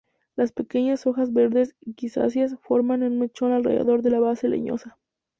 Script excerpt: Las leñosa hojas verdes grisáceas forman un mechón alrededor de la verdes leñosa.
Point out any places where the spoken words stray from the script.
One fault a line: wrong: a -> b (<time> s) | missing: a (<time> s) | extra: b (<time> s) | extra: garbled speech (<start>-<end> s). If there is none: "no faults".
wrong: leñosa -> pequeñas (0.5 s)
wrong: verdes -> base (4.2 s)